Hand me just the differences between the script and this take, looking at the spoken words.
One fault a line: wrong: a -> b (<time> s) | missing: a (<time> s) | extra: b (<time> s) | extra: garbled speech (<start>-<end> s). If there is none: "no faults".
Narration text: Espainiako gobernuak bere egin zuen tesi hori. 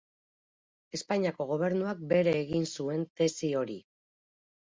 no faults